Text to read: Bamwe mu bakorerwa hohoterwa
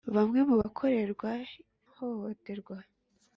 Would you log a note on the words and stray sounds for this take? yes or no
no